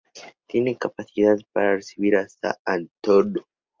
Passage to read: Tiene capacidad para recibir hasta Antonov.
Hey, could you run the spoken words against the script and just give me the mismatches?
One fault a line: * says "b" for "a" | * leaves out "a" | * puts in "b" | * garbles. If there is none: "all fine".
all fine